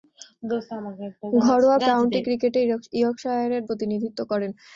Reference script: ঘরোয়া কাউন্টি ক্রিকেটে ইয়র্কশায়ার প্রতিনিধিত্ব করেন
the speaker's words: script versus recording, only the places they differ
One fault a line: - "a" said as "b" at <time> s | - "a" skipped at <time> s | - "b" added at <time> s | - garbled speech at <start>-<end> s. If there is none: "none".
none